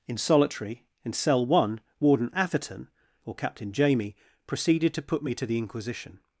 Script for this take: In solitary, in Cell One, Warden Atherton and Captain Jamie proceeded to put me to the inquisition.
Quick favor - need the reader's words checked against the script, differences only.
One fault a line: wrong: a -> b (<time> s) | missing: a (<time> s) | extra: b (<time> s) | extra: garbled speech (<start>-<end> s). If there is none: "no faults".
wrong: and -> or (3.2 s)